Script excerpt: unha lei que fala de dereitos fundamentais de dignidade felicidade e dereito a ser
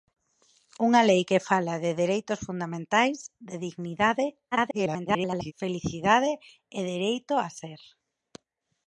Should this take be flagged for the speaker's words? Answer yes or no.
yes